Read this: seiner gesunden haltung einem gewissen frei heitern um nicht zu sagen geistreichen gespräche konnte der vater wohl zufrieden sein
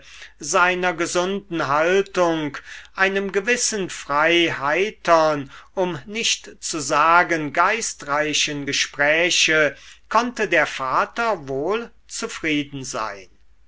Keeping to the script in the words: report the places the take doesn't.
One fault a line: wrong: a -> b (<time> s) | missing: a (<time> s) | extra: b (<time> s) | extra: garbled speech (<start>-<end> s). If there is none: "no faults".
no faults